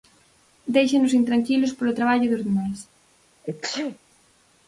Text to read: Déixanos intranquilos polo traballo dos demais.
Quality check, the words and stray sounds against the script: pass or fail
fail